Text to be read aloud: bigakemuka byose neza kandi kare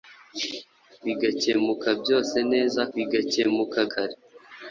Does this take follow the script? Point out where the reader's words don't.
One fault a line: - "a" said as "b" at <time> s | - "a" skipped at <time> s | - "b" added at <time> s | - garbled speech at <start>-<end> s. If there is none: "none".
- "kandi" said as "bigakemuka" at 2.9 s